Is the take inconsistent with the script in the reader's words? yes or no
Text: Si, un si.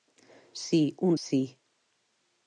no